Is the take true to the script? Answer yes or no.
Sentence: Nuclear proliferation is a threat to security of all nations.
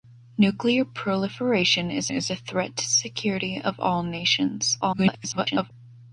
no